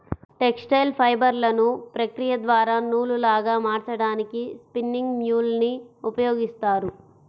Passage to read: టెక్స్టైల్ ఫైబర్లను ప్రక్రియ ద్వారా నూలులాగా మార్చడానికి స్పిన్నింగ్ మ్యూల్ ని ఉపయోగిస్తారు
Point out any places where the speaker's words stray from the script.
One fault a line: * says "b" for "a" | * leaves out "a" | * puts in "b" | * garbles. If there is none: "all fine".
all fine